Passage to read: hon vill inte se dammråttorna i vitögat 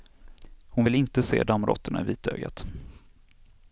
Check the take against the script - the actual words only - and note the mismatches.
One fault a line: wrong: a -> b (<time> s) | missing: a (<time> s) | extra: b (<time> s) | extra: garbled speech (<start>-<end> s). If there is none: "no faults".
no faults